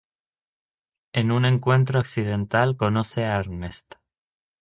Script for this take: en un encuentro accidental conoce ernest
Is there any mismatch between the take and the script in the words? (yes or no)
yes